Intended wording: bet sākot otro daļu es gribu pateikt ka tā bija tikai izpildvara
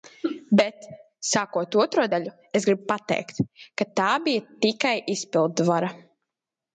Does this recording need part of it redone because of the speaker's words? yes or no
no